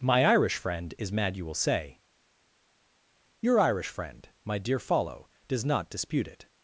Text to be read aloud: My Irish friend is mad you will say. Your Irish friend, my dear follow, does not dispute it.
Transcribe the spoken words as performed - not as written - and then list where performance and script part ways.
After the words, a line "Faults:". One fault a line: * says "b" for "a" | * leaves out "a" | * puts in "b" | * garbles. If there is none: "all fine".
My Irish friend is mad you will say. Your Irish friend, my dear follow, does not dispute it.
Faults:
all fine